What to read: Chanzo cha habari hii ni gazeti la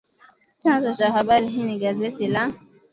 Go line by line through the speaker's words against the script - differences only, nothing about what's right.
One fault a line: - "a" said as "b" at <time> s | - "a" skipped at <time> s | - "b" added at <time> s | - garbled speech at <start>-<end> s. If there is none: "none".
none